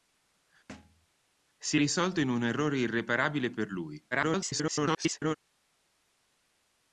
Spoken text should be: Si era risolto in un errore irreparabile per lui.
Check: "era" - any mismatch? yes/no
yes